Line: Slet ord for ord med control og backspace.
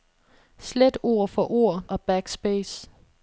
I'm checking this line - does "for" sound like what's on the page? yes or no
yes